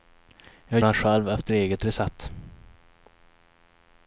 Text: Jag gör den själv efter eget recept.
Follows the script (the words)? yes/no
no